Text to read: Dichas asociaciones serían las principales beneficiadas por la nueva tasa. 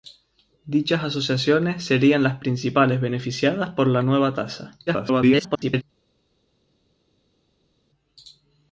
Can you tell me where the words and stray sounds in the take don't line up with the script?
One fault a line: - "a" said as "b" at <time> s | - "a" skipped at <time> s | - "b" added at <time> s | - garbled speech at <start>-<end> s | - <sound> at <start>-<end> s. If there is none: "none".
- garbled speech at 4.9-5.8 s